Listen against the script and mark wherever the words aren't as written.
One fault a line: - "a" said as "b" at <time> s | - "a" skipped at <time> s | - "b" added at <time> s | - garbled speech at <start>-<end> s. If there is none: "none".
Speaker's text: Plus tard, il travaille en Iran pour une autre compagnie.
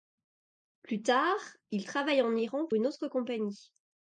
- "pour" skipped at 2.7 s